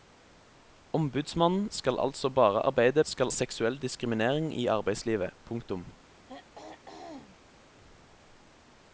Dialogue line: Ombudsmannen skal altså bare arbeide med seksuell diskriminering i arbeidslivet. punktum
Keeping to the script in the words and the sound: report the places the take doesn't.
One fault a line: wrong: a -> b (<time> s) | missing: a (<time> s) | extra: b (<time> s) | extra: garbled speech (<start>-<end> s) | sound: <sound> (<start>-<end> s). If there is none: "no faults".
wrong: med -> skal (3.0 s)
sound: throat clearing (6.1-7.6 s)